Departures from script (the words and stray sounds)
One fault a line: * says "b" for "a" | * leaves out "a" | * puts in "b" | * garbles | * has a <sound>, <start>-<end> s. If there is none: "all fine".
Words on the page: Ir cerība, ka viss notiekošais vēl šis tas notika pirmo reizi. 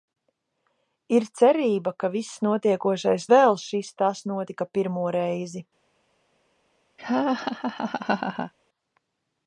* has a laugh, 7.0-8.5 s